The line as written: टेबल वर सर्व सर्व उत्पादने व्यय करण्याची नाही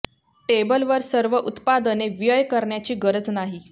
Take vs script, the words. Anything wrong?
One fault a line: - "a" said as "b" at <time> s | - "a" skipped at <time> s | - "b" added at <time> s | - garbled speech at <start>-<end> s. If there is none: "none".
- "सर्व" skipped at 1.4 s
- "गरज" added at 3.0 s